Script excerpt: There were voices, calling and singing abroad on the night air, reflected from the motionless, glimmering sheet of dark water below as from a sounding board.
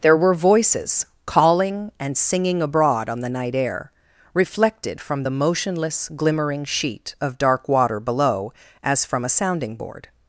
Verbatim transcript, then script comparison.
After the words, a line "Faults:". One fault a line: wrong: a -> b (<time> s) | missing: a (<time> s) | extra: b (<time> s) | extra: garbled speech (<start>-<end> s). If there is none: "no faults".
There were voices, calling and singing abroad on the night air, reflected from the motionless, glimmering sheet of dark water below as from a sounding board.
Faults:
no faults